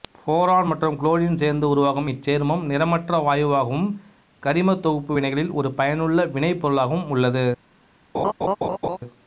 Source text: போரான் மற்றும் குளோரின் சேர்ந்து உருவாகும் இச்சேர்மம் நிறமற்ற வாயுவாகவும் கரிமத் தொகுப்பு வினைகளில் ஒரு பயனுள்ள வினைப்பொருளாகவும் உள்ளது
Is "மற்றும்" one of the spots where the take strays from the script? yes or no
no